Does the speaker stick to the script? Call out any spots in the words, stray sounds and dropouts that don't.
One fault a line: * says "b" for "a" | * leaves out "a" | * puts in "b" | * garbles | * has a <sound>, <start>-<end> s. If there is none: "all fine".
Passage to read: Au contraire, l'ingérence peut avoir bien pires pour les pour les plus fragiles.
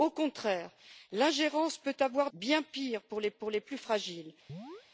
* has a chirp, 4.5-4.9 s